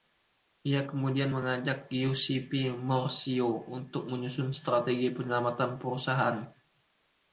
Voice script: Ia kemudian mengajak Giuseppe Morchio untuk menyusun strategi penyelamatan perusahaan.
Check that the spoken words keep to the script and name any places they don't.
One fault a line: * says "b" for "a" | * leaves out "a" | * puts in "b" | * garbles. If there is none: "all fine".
all fine